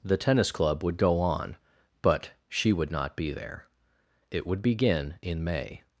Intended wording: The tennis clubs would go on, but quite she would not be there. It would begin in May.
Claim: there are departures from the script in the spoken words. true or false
true